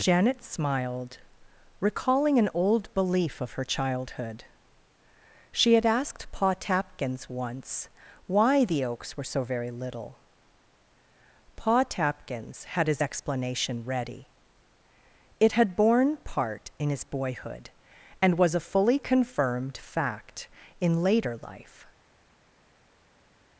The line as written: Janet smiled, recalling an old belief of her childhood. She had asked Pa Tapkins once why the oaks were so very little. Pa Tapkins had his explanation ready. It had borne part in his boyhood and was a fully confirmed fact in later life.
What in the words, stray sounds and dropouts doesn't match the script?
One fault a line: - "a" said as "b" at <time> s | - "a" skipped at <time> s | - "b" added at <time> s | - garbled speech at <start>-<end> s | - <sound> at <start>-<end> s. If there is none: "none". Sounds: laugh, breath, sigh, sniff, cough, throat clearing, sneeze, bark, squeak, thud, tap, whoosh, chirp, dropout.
none